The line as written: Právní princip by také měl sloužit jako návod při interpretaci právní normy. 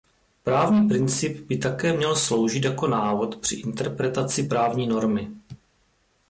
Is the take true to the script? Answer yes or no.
yes